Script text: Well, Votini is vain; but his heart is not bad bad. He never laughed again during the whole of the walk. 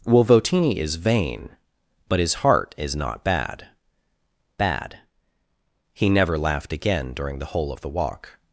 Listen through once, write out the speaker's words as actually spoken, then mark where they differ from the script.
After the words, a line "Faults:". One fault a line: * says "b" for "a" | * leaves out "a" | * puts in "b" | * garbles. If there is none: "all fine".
Well, Votini is vain; but his heart is not bad bad. He never laughed again during the whole of the walk.
Faults:
all fine